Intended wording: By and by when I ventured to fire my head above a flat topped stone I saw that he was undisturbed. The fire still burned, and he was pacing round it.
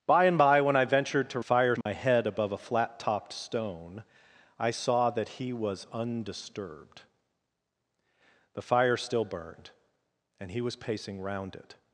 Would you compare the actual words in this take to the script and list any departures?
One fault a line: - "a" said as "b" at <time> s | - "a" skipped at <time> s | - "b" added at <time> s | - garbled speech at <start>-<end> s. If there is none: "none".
none